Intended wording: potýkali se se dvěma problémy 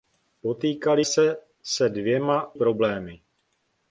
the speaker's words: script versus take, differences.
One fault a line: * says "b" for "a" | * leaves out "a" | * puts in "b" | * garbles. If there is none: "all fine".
all fine